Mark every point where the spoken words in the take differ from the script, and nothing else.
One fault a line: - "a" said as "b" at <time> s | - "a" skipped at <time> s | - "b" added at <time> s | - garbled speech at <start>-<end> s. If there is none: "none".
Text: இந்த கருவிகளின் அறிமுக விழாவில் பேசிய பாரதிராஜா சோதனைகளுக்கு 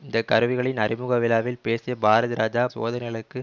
none